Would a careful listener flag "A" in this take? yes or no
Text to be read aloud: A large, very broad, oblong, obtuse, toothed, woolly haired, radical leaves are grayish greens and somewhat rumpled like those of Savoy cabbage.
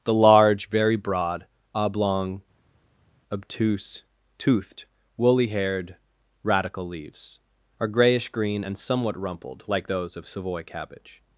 yes